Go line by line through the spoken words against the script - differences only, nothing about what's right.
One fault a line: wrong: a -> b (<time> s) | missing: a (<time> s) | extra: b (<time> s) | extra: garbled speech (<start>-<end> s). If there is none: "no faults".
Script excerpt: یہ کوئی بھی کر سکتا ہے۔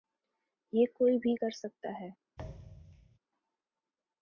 no faults